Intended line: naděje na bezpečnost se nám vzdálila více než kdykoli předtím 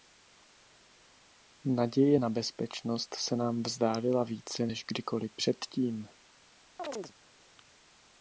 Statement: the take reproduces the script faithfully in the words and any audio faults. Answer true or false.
false